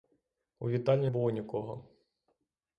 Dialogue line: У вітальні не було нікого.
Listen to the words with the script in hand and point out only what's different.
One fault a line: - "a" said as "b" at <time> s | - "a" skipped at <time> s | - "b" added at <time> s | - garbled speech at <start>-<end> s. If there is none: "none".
- "не" skipped at 1.1 s